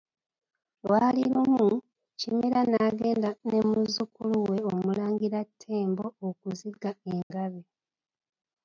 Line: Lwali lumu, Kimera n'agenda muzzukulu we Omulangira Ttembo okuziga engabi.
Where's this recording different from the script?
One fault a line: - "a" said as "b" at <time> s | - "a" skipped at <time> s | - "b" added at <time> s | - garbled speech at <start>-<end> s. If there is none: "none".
- "ne" added at 3.5 s